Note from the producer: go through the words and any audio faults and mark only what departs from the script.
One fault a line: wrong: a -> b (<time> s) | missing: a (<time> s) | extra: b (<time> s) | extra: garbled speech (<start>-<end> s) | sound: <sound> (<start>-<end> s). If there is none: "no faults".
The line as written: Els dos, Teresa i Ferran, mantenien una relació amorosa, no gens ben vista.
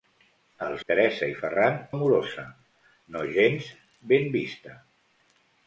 missing: dos (0.8 s)
missing: mantenien una relació (1.8 s)